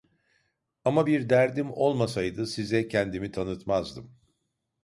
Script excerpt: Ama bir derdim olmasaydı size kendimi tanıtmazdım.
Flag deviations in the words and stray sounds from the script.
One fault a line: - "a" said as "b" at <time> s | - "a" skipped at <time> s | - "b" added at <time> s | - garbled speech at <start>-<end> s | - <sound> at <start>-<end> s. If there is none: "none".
none